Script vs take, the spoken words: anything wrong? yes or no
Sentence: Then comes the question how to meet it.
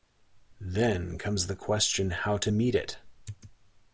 no